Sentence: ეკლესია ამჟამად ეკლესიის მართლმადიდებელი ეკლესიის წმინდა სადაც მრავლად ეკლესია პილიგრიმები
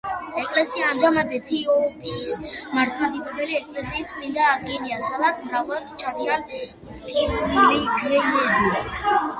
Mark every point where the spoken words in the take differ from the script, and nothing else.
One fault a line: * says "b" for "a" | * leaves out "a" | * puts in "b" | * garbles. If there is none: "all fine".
* says "ეთიოპიის" for "ეკლესიის"
* puts in "ადგილია"
* says "ჩადიან" for "ეკლესია"